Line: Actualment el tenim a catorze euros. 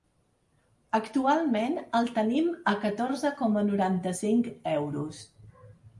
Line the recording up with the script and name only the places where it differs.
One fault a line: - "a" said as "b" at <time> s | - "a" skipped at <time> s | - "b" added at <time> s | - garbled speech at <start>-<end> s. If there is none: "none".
- "coma noranta cinc" added at 3.4 s